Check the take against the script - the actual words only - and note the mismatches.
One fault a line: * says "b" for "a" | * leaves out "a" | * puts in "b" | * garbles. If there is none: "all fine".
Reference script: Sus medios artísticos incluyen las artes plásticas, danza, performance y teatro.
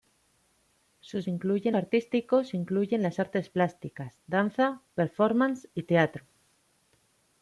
* says "incluyen" for "medios"